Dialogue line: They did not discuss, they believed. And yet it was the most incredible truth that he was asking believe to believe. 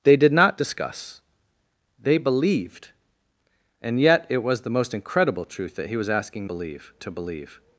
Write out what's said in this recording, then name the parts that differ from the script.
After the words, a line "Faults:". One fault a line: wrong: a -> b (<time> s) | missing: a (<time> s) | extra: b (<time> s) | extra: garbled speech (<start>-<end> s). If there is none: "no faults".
They did not discuss, they believed. And yet it was the most incredible truth that he was asking believe to believe.
Faults:
no faults